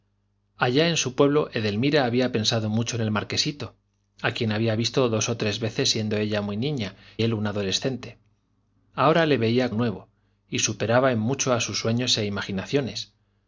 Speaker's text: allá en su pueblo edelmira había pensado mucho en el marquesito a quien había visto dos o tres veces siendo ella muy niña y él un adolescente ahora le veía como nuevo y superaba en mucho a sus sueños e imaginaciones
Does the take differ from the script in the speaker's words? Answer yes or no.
yes